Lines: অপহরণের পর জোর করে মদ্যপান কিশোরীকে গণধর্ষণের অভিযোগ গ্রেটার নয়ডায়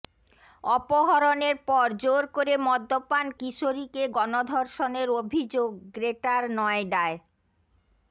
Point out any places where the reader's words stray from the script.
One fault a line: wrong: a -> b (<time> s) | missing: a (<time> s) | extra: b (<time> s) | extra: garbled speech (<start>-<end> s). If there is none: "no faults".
no faults